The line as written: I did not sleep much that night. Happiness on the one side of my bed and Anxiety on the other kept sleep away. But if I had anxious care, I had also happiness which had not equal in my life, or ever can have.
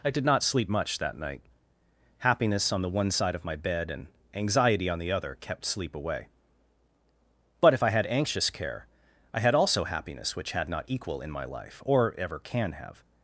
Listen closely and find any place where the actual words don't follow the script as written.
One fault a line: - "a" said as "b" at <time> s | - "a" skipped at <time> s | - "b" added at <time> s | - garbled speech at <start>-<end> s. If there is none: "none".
none